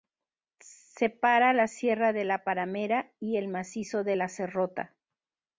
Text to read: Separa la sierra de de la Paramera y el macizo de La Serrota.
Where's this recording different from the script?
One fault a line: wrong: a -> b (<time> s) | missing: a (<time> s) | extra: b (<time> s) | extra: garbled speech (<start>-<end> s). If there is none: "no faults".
missing: de (2.2 s)